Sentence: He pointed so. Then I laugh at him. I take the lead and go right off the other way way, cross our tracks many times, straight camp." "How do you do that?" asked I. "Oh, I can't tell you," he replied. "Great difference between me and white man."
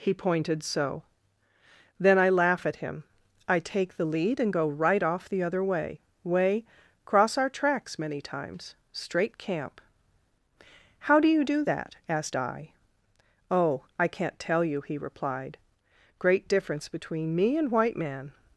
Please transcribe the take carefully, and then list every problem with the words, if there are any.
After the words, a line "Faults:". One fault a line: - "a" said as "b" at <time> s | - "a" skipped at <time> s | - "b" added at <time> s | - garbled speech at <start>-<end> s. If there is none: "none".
He pointed so. Then I laugh at him. I take the lead and go right off the other way way, cross our tracks many times, straight camp." "How do you do that?" asked I. "Oh, I can't tell you," he replied. "Great difference between me and white man."
Faults:
none